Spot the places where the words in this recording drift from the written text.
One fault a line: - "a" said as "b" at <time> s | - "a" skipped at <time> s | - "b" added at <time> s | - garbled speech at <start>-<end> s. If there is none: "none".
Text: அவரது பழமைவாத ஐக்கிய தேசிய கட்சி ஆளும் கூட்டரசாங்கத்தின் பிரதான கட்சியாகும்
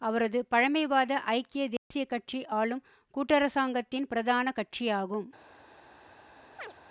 none